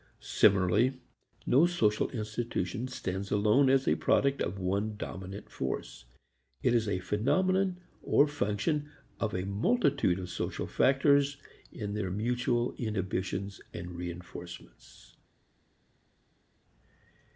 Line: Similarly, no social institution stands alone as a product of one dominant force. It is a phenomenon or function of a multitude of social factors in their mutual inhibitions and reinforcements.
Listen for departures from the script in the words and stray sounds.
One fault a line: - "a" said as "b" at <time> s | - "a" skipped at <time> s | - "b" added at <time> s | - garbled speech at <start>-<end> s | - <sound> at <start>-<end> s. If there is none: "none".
none